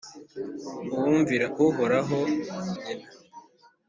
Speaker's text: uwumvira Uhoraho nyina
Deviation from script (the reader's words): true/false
false